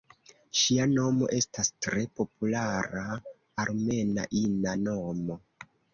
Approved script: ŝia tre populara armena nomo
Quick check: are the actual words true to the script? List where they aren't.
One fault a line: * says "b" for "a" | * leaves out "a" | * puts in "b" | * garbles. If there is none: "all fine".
* puts in "nomo estas"
* puts in "ina"